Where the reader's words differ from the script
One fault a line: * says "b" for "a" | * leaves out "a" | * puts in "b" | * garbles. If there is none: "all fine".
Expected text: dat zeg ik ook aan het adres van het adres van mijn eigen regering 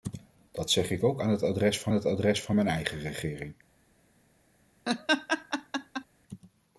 all fine